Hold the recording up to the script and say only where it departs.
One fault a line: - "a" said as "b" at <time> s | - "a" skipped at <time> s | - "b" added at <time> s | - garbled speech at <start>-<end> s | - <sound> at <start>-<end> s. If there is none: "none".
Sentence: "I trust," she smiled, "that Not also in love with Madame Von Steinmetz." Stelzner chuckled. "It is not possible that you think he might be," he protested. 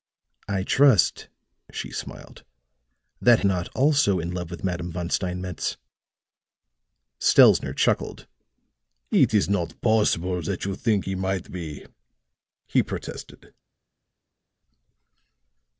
none